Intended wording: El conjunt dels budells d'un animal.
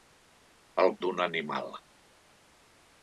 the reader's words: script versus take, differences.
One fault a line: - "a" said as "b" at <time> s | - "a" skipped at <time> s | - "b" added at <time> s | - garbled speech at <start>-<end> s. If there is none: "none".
- "conjunt dels budells" skipped at 0.9 s